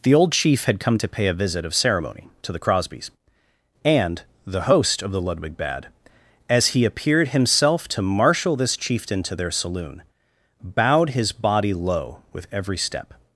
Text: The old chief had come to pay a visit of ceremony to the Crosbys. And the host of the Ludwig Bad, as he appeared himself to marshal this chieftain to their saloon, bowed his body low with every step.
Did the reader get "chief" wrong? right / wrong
right